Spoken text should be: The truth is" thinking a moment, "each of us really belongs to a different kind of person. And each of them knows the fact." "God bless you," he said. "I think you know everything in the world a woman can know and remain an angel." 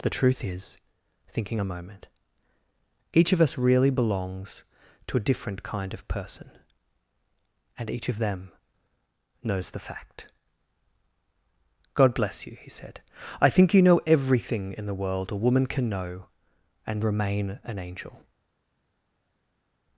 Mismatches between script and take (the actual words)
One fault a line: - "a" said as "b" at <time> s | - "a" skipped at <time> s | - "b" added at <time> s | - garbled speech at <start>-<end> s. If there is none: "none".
none